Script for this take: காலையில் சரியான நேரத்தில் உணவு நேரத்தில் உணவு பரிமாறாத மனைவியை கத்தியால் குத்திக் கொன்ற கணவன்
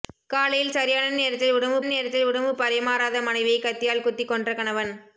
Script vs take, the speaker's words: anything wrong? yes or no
no